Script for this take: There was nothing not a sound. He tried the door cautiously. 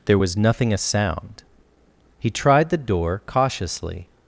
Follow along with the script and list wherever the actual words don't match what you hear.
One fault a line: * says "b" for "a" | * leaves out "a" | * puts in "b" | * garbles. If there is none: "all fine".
* leaves out "not"